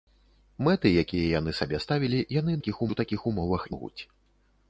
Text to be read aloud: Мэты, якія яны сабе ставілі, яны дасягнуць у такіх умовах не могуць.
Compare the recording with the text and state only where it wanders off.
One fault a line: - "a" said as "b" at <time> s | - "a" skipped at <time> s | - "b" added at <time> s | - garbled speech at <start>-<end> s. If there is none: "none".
- "дасягнуць" said as "такіх" at 2.6 s
- "не" skipped at 3.7 s